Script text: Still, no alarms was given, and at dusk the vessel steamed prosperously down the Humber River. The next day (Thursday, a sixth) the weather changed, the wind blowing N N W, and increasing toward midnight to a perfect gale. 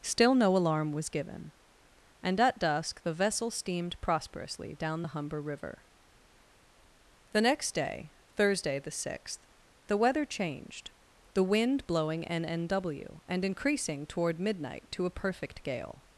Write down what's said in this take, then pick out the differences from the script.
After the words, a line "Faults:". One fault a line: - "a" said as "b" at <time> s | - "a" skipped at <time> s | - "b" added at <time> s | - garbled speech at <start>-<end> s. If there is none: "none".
Still, no alarm was given, and at dusk the vessel steamed prosperously down the Humber River. The next day (Thursday, the sixth) the weather changed, the wind blowing N N W, and increasing toward midnight to a perfect gale.
Faults:
- "alarms" said as "alarm" at 0.6 s
- "a" said as "the" at 8.8 s